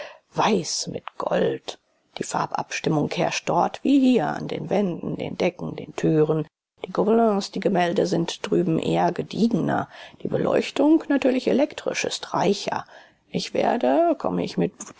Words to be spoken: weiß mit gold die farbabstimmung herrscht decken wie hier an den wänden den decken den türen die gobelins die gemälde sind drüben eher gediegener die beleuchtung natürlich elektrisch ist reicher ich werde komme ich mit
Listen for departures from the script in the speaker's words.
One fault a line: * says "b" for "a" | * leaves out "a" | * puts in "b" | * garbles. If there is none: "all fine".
* says "dort" for "decken"